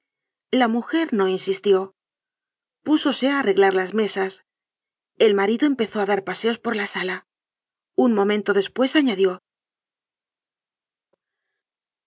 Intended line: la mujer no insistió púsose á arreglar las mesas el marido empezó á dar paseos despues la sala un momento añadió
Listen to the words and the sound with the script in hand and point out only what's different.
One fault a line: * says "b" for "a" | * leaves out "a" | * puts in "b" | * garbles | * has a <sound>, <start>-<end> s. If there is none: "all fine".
* says "por" for "despues"
* puts in "despues"